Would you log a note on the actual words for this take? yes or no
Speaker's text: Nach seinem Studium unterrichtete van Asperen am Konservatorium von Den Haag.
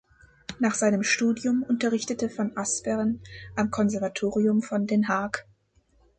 no